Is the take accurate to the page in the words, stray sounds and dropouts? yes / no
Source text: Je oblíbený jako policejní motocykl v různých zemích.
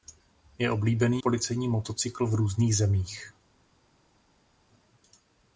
no